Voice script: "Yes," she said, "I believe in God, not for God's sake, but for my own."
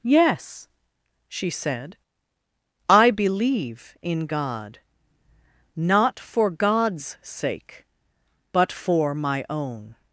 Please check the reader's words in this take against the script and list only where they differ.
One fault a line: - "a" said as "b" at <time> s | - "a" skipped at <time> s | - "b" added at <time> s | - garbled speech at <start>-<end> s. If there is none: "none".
none